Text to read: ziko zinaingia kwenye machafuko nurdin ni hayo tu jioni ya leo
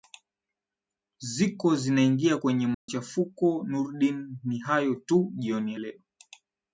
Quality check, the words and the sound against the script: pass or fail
fail